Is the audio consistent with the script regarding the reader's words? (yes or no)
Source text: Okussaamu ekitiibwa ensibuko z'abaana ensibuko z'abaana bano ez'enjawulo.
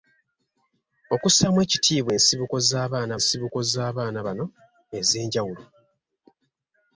yes